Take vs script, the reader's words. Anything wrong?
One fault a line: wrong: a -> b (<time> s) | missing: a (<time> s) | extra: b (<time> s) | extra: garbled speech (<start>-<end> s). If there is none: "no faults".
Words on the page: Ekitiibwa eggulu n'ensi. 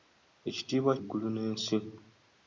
no faults